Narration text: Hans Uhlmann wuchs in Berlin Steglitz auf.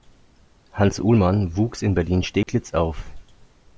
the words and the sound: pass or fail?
fail